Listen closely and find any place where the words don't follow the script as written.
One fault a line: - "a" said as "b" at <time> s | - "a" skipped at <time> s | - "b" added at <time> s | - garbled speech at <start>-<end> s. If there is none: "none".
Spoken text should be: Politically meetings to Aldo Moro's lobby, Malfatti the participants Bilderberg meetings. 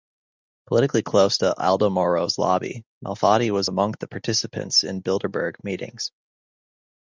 - "meetings" said as "close" at 1.0 s
- "was among" added at 3.5 s
- "in" added at 4.8 s